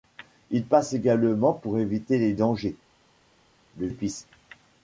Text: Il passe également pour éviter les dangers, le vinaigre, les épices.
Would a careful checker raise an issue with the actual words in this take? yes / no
yes